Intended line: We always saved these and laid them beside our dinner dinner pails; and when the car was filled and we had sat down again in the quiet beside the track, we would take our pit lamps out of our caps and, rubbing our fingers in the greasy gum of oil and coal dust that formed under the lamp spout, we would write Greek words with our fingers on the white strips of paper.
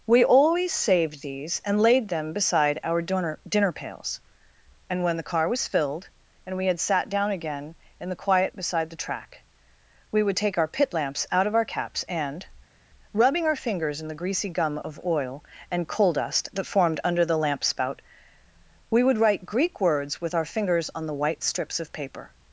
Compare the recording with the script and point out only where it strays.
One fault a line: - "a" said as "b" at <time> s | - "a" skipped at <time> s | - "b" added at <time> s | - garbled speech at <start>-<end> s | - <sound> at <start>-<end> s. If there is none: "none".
none